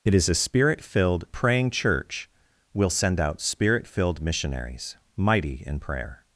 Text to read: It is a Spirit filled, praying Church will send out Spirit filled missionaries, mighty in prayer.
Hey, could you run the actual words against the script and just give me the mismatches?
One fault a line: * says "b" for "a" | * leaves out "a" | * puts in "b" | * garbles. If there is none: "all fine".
all fine